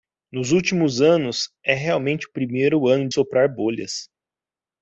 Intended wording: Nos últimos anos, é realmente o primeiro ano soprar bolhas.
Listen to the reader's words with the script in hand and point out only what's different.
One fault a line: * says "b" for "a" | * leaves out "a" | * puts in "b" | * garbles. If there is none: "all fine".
all fine